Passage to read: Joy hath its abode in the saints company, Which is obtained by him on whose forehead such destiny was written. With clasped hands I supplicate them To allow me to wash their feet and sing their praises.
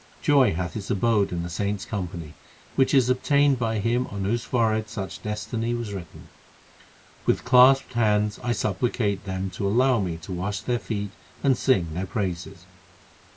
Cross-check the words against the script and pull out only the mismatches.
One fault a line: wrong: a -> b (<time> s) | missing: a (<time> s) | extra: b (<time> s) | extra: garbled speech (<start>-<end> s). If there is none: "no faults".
no faults